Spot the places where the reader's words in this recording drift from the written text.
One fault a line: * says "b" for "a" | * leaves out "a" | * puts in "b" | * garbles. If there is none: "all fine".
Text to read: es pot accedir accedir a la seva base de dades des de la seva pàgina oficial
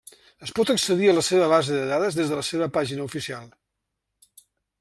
* leaves out "accedir"